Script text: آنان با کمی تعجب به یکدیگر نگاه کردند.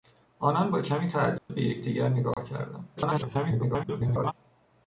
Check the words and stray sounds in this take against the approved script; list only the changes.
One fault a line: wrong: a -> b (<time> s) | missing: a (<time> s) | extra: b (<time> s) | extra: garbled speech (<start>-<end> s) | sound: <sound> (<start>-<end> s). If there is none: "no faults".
sound: dropout (1.4-1.5 s)
sound: dropout (2.3-2.4 s)
extra: garbled speech (3.0-4.3 s)